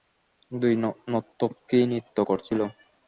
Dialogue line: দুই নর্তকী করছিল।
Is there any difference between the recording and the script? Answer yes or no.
yes